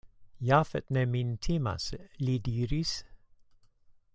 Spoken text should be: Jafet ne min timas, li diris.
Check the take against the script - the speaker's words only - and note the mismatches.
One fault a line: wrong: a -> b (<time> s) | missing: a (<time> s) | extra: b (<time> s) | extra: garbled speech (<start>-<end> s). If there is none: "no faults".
no faults